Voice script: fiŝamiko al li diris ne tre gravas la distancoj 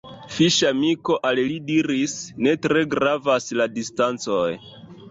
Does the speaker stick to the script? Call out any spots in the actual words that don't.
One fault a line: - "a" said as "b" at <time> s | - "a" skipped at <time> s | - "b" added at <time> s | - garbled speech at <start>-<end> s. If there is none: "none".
none